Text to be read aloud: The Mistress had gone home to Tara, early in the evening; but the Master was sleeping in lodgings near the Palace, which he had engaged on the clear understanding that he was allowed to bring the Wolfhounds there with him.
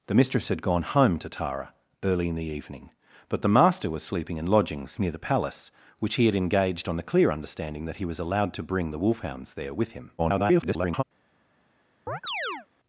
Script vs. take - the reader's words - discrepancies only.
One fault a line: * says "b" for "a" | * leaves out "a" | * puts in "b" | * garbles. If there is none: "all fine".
* garbles